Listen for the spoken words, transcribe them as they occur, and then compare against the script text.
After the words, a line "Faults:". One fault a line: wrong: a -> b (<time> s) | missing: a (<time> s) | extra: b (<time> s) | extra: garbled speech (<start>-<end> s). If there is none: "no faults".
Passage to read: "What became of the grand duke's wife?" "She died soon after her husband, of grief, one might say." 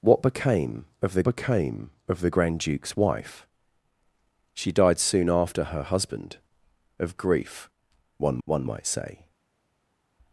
"What became of the became of the grand duke's wife?" "She died soon after her husband, of grief, one one might say."
Faults:
extra: became of the (1.2 s)
extra: one (8.5 s)